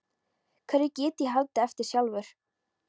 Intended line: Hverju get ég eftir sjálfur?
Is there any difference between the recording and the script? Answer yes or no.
yes